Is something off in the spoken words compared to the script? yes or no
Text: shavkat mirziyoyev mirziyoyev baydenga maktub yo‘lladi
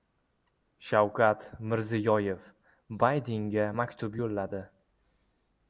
yes